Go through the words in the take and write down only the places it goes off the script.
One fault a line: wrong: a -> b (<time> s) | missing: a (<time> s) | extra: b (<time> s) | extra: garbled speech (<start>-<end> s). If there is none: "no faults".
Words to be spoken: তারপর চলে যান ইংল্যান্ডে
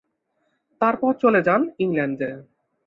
no faults